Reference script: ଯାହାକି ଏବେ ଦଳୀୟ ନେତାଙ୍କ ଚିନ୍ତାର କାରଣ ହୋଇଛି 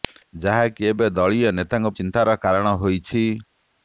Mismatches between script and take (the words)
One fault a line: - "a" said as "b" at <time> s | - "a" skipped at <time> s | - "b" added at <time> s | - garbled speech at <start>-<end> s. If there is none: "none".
none